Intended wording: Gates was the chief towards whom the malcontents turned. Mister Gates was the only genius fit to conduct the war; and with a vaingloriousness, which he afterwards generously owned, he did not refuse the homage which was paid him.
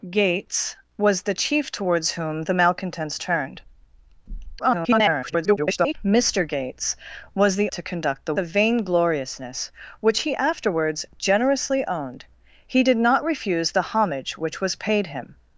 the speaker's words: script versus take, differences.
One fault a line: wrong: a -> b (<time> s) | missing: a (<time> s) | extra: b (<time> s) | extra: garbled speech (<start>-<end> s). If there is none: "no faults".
extra: garbled speech (4.6-5.9 s)
missing: only genius fit (7.7 s)
missing: war and with (8.3 s)